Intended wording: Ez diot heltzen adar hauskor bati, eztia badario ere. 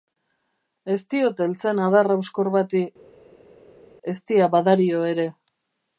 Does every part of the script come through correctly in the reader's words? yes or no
yes